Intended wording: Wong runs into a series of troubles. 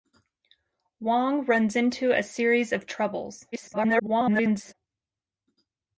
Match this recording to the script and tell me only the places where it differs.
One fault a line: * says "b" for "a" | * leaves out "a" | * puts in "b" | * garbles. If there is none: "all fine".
* garbles